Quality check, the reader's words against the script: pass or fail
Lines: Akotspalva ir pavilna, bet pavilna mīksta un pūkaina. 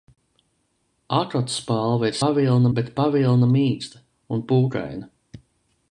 pass